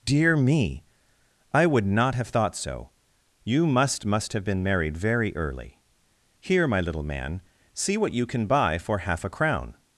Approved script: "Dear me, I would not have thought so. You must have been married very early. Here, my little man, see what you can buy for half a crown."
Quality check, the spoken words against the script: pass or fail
fail